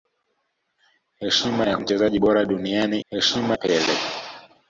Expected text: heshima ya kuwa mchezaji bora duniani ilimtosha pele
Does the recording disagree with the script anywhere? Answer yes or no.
yes